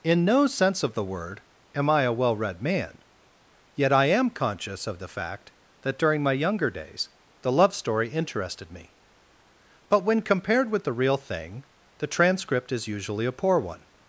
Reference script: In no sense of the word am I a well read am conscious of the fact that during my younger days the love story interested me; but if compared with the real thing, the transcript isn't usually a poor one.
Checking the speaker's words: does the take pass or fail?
fail